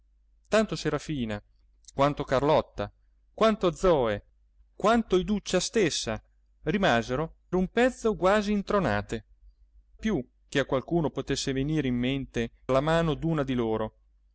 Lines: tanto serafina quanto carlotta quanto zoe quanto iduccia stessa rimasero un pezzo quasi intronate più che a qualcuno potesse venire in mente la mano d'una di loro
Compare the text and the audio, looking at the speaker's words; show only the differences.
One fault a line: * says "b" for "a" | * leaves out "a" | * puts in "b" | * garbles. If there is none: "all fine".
all fine